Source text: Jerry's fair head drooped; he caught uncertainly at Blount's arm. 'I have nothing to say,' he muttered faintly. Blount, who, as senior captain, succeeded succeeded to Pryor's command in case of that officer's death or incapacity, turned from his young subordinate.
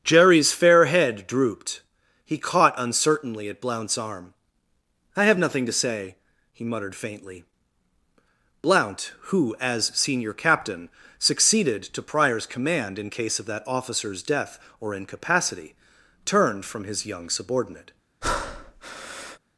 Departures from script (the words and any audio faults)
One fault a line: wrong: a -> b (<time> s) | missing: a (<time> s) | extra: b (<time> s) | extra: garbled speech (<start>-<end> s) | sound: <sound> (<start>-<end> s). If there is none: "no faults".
missing: succeeded (11.8 s)
sound: breath (18.2-19.4 s)